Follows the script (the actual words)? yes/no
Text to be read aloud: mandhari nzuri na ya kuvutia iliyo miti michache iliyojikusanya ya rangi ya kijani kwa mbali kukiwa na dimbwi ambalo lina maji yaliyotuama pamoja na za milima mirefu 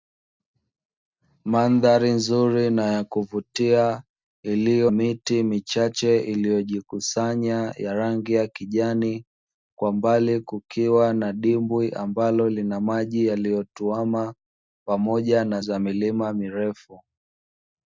yes